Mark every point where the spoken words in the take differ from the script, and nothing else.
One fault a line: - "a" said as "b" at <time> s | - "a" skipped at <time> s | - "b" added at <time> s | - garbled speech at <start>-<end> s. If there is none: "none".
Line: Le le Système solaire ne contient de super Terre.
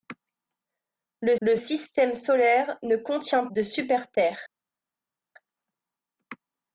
none